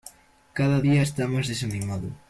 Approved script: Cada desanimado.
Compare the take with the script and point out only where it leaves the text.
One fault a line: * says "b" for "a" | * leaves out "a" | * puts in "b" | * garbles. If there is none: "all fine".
* puts in "día está más"